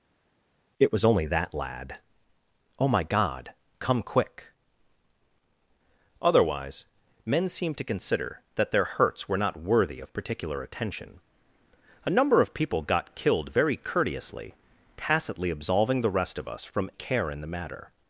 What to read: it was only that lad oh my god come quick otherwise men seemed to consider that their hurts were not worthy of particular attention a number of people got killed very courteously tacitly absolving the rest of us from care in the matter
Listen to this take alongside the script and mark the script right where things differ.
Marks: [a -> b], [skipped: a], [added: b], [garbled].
it was only that lad oh my god come quick otherwise men seemed to consider that their hurts were not worthy of particular attention a number of people got killed very courteously tacitly absolving the rest of us from care in the matter